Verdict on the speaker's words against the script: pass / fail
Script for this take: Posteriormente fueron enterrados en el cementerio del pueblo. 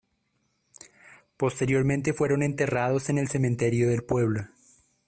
pass